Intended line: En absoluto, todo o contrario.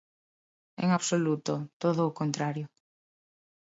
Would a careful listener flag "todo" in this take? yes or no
no